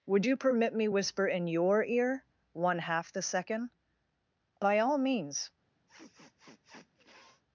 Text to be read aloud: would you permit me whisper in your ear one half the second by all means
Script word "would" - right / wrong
right